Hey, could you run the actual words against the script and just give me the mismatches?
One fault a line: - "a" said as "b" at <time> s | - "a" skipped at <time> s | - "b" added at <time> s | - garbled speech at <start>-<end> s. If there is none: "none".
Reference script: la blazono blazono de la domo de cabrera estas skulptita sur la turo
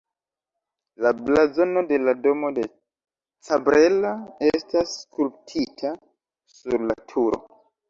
- "blazono" skipped at 1.8 s